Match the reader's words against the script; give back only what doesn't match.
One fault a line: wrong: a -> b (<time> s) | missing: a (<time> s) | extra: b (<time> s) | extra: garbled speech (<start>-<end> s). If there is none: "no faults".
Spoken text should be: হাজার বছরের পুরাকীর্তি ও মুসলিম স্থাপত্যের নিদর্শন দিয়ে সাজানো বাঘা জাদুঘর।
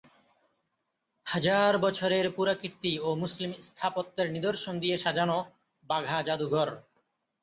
no faults